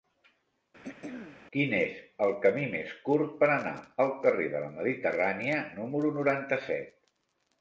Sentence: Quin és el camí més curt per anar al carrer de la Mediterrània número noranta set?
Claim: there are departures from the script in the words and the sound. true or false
true